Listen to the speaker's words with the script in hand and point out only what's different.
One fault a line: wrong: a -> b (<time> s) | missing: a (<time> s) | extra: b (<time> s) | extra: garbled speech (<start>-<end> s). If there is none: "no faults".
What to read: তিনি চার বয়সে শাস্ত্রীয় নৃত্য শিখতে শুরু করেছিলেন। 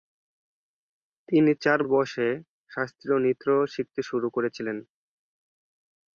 no faults